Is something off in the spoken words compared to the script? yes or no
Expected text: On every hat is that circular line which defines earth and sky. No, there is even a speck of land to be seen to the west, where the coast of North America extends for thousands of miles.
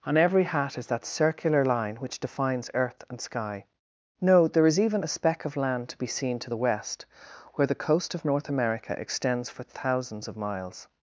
no